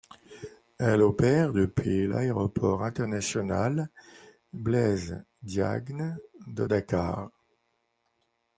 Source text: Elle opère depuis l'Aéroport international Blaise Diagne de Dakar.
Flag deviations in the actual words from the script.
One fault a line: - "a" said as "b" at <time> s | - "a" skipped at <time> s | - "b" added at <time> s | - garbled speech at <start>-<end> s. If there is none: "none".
none